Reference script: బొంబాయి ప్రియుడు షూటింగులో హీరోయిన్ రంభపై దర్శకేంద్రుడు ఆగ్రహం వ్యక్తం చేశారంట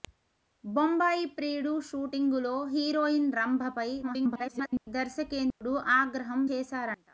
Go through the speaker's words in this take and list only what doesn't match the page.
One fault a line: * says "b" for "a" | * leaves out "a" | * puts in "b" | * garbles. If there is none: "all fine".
* garbles
* leaves out "వ్యక్తం"